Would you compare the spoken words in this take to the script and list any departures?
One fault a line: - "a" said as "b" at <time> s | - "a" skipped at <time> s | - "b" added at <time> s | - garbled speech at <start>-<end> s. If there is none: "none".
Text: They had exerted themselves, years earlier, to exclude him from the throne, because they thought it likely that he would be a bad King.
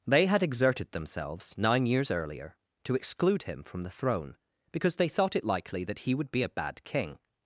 - "nine" added at 1.6 s